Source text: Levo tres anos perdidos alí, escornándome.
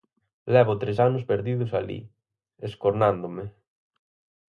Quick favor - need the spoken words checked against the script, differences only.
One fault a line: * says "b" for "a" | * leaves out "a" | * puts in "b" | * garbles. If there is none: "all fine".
all fine